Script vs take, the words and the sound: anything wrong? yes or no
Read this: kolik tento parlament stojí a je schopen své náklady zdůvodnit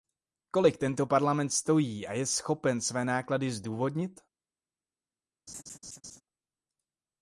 yes